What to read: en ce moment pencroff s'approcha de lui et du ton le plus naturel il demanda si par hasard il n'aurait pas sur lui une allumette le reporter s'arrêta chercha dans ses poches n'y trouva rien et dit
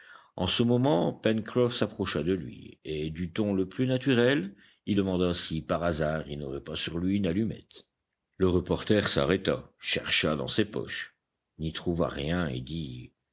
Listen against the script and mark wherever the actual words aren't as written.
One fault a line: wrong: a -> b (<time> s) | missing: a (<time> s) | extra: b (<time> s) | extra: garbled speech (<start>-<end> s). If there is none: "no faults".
no faults